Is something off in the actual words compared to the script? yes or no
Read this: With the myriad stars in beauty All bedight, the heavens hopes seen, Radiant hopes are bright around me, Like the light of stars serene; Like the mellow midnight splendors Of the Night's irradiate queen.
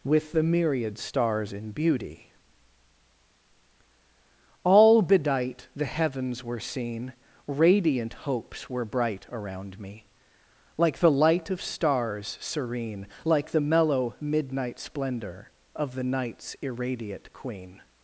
yes